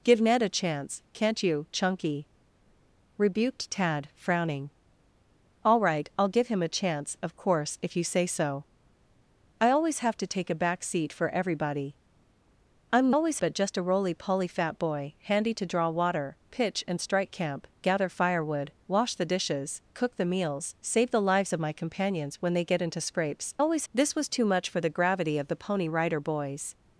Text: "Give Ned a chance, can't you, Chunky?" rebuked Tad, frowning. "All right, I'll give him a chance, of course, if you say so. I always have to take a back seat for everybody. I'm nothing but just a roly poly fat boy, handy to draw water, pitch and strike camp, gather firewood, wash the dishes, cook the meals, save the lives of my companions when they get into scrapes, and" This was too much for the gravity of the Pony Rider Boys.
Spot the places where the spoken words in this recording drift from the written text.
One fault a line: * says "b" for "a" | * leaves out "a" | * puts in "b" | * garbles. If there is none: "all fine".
* says "always" for "nothing"
* says "always" for "and"